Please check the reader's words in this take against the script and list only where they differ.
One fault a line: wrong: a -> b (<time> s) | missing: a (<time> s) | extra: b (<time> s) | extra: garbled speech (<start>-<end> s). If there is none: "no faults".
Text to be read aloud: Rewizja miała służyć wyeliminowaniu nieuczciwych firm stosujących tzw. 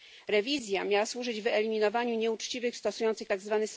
missing: firm (2.8 s)